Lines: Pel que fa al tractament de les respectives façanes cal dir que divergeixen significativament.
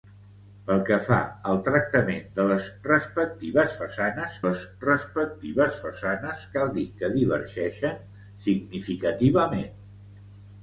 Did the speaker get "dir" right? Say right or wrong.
right